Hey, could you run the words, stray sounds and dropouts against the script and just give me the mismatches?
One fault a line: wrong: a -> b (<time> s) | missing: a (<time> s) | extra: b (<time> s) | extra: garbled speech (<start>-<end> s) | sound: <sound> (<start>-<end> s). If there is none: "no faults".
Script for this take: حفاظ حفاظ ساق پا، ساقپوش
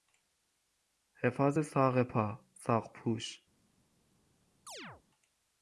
missing: حفاظ (1.6 s)
sound: chirp (4.7-5.0 s)